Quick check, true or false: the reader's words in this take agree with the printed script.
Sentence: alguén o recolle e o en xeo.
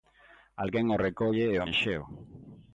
true